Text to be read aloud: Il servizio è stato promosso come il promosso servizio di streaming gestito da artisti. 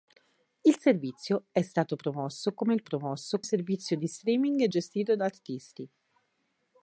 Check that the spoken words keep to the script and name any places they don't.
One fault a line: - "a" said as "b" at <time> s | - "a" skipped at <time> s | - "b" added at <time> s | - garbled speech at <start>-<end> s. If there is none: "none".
none